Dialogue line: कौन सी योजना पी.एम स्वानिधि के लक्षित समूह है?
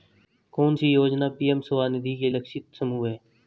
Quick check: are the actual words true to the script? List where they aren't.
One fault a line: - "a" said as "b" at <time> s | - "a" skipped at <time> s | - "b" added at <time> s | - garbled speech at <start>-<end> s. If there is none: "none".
none